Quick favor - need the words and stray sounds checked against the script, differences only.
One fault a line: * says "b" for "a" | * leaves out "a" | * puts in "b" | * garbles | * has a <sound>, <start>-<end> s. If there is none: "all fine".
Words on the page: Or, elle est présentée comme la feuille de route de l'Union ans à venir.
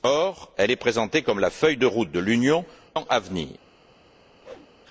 * has a whoosh, 4.4-4.7 s